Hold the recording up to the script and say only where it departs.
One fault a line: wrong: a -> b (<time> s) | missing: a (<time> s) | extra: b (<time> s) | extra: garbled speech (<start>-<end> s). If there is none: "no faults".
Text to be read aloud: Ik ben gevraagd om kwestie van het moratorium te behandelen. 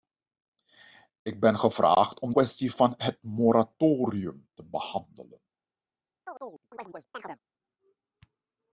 no faults